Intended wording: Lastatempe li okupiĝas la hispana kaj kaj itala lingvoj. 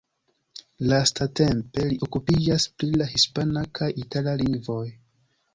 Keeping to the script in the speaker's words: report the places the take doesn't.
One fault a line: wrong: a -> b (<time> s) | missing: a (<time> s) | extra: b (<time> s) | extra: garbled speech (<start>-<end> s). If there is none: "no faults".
extra: pri (2.8 s)
missing: kaj (3.9 s)